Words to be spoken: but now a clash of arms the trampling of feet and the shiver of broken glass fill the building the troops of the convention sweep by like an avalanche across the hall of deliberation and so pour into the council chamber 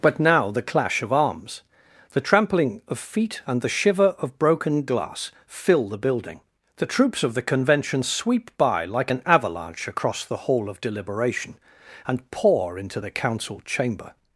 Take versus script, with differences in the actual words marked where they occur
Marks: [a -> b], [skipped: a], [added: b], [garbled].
but now [a -> the] clash of arms the trampling of feet and the shiver of broken glass fill the building the troops of the convention sweep by like an avalanche across the hall of deliberation and [skipped: so] pour into the council chamber